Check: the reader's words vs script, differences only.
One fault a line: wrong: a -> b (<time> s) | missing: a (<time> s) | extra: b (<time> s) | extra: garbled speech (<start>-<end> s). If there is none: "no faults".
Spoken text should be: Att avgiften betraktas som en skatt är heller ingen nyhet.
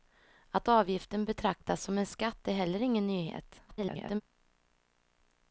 extra: garbled speech (3.7-4.2 s)